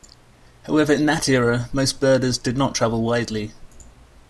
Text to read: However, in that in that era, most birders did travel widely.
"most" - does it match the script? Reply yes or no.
yes